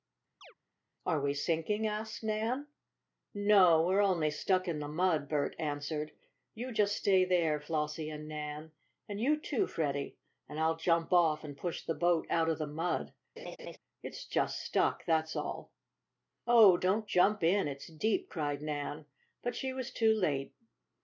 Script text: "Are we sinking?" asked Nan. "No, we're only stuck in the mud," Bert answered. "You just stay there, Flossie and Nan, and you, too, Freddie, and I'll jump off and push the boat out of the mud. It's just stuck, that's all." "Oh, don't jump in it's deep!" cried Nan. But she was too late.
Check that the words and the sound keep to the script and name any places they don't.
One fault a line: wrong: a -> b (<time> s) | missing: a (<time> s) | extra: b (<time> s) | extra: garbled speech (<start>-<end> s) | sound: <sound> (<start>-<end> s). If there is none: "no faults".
sound: chirp (0.4-0.5 s)
sound: laugh (13.4-13.8 s)